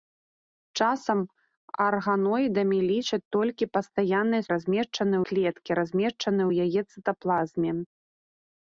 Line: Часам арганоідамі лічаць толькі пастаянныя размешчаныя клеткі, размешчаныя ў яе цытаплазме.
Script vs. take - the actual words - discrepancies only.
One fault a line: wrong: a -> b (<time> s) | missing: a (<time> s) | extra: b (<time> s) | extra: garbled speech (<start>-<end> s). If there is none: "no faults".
no faults